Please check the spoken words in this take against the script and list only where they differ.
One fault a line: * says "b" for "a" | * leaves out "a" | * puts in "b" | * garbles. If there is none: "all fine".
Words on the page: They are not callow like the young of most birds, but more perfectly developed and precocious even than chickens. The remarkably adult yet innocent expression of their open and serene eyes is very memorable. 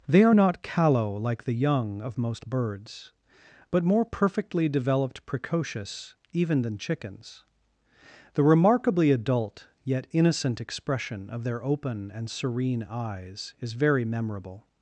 * leaves out "and"